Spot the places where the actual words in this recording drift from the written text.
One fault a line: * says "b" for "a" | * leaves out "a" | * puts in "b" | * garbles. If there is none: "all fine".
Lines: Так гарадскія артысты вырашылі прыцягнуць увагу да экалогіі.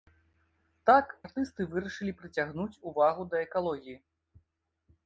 * leaves out "гарадскія"